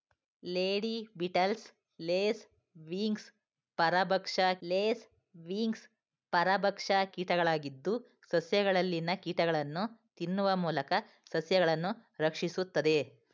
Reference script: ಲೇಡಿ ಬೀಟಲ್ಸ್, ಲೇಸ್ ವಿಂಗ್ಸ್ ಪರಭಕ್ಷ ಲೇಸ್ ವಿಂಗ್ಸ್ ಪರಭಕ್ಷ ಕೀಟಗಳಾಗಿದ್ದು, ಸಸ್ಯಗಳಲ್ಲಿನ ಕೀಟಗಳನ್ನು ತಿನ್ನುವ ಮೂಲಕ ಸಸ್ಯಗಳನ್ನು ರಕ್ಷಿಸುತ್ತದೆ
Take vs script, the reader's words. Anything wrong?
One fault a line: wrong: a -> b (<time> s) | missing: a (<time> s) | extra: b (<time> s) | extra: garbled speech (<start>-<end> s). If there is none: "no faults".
no faults